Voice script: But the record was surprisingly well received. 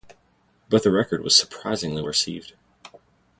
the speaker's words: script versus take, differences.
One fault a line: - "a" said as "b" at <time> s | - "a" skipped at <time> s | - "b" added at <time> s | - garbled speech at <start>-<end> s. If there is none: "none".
- "well" skipped at 2.0 s